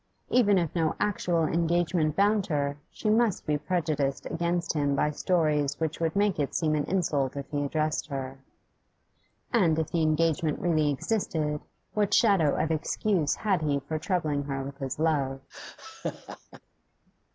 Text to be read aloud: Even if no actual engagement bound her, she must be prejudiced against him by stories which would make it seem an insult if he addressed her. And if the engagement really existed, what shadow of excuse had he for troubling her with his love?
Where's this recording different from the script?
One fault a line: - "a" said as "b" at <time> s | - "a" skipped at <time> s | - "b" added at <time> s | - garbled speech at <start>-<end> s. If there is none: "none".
none